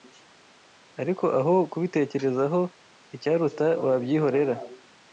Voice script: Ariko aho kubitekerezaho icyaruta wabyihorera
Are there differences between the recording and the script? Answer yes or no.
no